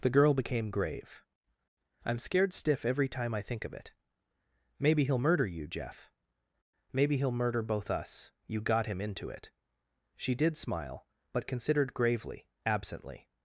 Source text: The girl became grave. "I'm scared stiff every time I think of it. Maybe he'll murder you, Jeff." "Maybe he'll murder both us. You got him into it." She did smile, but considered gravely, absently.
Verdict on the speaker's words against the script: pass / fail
pass